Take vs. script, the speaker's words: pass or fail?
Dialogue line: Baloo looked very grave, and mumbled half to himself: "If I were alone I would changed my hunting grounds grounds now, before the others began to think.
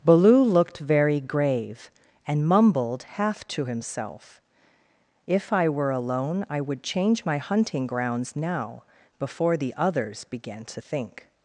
fail